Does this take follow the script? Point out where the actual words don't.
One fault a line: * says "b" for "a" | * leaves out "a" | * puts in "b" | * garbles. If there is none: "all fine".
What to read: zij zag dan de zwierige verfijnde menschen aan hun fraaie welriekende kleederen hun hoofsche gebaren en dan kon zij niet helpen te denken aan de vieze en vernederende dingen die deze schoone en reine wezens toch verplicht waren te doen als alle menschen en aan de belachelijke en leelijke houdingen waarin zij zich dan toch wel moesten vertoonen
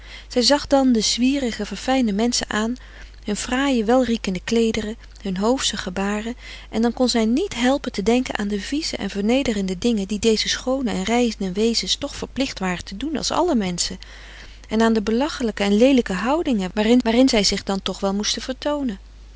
* puts in "waarin"